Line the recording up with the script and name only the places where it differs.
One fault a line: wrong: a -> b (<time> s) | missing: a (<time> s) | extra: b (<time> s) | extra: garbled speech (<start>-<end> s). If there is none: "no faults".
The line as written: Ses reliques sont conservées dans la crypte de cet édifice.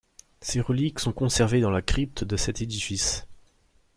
no faults